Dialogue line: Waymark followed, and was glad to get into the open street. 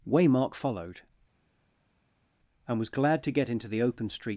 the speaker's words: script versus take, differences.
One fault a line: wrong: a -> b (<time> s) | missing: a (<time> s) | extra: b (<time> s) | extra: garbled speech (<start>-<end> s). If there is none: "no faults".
no faults